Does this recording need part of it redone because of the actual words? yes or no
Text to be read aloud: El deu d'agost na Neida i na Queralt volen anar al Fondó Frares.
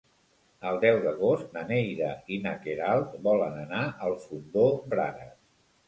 no